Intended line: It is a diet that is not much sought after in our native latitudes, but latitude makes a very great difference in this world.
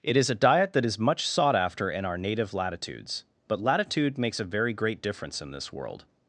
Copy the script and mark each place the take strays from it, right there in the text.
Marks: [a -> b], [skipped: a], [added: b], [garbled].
It is a diet that is [skipped: not] much sought after in our native latitudes, but latitude makes a very great difference in this world.